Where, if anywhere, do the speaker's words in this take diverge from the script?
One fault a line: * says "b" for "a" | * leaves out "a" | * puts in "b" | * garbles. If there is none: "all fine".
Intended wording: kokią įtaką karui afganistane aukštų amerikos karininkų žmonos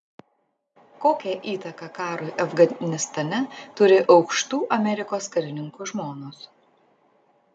* puts in "turi"